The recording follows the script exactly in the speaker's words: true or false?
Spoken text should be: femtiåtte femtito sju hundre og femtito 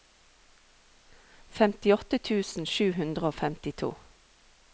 false